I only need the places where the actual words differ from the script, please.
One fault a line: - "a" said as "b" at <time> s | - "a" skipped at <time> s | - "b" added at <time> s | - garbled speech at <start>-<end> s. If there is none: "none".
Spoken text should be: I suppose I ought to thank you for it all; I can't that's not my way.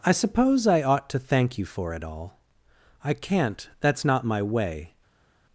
none